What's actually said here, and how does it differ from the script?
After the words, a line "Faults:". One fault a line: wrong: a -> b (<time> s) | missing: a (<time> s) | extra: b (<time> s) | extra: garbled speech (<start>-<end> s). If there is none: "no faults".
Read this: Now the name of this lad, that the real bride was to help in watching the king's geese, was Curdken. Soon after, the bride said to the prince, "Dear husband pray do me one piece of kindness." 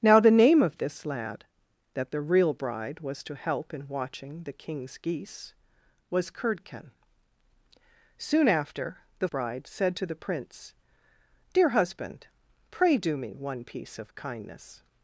Now the name of this lad, that the real bride was to help in watching the king's geese, was Curdken. Soon after, the bride said to the prince, "Dear husband pray do me one piece of kindness."
Faults:
no faults